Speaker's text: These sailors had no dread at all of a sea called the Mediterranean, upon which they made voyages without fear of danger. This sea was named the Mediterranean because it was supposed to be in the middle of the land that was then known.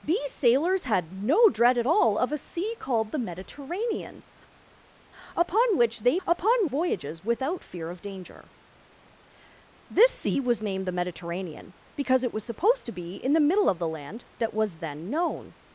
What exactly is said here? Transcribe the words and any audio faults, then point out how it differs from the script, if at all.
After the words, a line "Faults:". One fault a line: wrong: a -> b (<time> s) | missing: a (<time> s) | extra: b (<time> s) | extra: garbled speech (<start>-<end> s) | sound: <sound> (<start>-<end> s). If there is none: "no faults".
These sailors had no dread at all of a sea called the Mediterranean, upon which they upon voyages without fear of danger. This sea was named the Mediterranean because it was supposed to be in the middle of the land that was then known.
Faults:
wrong: made -> upon (6.2 s)